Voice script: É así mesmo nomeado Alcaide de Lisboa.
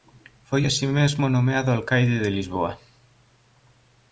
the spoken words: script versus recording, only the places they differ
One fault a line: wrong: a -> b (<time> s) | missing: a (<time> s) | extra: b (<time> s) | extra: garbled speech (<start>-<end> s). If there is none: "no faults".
wrong: É -> Foi (0.5 s)